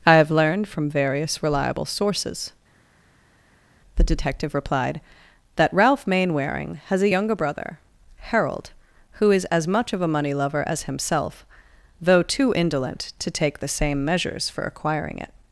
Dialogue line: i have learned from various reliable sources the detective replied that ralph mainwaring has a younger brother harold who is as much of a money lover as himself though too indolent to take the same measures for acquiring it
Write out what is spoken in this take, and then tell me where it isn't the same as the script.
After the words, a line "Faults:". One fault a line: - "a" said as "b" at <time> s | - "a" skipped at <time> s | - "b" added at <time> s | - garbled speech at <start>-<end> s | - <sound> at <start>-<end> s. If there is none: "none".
i have learned from various reliable sources the detective replied that ralph mainwaring has a younger brother harold who is as much of a money lover as himself though too indolent to take the same measures for acquiring it
Faults:
none